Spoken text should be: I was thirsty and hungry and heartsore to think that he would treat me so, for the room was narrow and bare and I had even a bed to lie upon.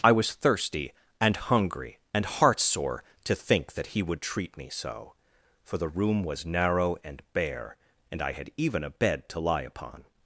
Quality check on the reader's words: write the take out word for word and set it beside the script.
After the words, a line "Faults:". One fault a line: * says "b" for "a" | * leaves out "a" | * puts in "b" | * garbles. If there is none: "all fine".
I was thirsty and hungry and heartsore to think that he would treat me so, for the room was narrow and bare and I had even a bed to lie upon.
Faults:
all fine